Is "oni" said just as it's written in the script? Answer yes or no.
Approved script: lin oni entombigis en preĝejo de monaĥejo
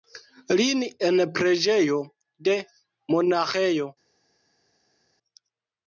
no